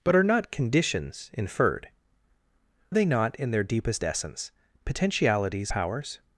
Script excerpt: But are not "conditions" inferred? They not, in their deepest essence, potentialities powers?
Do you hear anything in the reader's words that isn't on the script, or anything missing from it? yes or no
no